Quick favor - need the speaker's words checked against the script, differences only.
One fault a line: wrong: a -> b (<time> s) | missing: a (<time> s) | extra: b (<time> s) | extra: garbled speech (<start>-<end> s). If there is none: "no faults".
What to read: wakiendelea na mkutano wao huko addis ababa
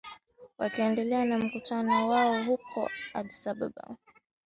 no faults